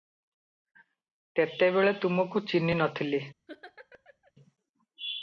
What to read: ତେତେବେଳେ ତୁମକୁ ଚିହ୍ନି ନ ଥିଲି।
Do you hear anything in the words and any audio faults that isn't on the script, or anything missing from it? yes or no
yes